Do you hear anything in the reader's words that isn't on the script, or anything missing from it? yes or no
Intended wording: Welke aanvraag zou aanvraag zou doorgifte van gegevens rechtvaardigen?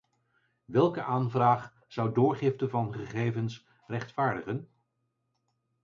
yes